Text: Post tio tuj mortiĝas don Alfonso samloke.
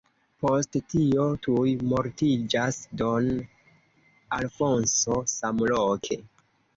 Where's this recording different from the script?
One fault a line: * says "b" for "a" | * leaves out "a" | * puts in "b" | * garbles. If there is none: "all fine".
all fine